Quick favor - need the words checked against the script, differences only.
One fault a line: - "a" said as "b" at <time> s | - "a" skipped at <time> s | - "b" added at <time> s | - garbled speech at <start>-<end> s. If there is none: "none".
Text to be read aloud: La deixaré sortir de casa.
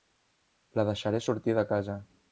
none